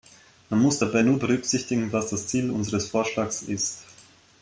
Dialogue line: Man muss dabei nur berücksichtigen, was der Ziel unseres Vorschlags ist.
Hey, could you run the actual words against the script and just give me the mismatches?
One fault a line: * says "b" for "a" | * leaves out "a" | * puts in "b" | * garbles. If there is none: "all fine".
* says "das" for "der"